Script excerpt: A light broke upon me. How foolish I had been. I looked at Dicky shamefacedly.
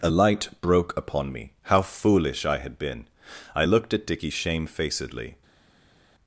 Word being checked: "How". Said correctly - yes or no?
yes